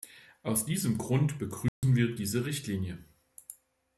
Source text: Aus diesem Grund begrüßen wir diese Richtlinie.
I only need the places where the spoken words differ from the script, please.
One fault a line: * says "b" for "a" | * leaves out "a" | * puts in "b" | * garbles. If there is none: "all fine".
all fine